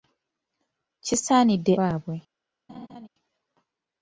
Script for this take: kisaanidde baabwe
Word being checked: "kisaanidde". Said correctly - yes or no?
yes